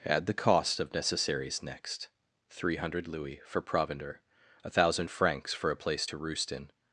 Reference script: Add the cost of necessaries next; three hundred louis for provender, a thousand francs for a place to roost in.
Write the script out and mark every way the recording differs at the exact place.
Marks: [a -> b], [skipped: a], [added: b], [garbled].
Add the cost of necessaries next; three hundred louis for provender, a thousand francs for a place to roost in.